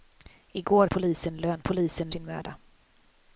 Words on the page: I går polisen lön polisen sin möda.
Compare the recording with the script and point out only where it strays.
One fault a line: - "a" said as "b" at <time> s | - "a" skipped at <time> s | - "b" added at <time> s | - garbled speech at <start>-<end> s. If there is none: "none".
none